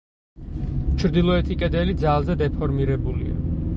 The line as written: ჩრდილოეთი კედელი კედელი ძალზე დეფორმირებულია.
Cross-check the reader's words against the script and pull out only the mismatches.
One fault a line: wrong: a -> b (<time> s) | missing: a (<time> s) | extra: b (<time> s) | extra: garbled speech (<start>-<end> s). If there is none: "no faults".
missing: კედელი (1.9 s)